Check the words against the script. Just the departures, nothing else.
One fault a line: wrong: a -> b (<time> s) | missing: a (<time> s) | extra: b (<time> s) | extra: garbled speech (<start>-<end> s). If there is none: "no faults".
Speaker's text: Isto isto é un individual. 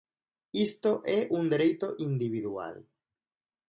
missing: isto (1.0 s)
extra: dereito (1.5 s)